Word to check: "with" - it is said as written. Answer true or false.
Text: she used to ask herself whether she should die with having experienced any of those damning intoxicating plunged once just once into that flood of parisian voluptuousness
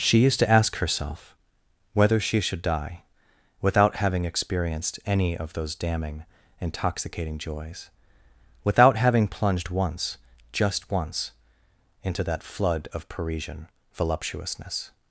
false